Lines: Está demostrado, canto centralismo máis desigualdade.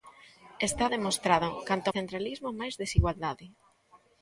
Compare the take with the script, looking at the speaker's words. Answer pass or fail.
pass